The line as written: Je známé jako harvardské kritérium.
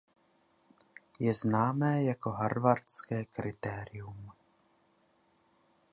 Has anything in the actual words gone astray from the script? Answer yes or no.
no